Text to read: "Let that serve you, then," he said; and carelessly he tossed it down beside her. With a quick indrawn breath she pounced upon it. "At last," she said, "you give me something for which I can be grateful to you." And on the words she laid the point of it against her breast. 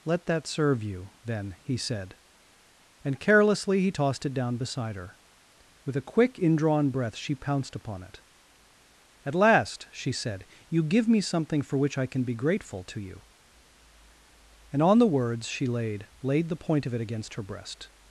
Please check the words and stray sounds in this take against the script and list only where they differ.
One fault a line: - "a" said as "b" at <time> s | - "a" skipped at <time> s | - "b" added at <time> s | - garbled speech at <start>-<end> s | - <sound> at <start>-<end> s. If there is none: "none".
- "laid" added at 16.2 s